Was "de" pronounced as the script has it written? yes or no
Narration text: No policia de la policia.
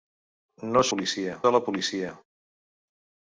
yes